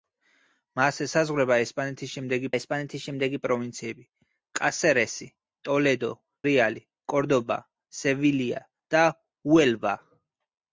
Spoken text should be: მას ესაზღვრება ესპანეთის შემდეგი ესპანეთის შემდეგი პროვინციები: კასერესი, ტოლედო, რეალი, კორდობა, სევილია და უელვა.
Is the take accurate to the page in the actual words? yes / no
yes